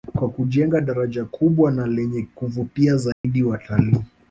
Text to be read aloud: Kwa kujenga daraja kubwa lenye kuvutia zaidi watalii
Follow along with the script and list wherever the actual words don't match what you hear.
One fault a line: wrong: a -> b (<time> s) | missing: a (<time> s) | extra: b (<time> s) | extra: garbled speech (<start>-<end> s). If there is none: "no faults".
extra: na (1.7 s)